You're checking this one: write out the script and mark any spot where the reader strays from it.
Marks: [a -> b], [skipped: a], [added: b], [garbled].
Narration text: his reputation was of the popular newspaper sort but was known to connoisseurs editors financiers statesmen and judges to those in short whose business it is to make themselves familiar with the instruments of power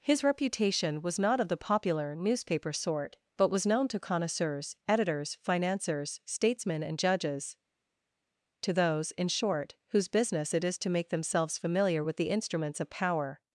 his reputation was [added: not] of the popular newspaper sort but was known to connoisseurs editors financiers statesmen and judges to those in short whose business it is to make themselves familiar with the instruments of power